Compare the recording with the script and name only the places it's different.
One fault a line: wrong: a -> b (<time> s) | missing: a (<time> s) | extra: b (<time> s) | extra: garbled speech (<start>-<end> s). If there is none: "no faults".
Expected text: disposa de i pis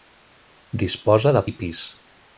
no faults